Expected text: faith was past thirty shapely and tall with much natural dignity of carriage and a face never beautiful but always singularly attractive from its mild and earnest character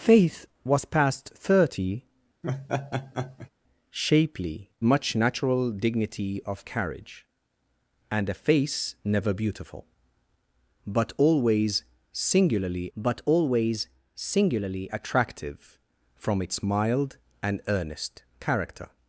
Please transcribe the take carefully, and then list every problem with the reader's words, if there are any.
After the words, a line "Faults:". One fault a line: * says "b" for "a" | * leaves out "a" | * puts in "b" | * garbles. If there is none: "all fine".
faith was past thirty shapely much natural dignity of carriage and a face never beautiful but always singularly but always singularly attractive from its mild and earnest character
Faults:
* leaves out "and tall with"
* puts in "but always singularly"